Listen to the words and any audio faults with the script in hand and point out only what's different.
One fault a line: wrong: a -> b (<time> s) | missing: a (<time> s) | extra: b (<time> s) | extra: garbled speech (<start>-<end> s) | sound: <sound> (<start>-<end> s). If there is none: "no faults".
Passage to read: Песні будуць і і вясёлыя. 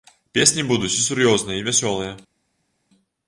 extra: сур'ёзныя (1.1 s)